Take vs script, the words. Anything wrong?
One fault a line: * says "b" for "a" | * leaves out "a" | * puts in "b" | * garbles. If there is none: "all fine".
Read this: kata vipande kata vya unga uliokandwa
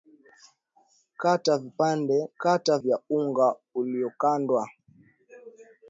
all fine